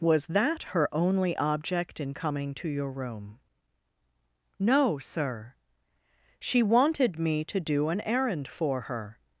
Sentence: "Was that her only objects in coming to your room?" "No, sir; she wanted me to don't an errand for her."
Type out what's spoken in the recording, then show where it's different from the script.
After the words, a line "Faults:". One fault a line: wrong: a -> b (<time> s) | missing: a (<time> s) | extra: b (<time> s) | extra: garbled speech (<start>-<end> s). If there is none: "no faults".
"Was that her only object in coming to your room?" "No, sir; she wanted me to do an errand for her."
Faults:
wrong: objects -> object (1.4 s)
wrong: don't -> do (7.6 s)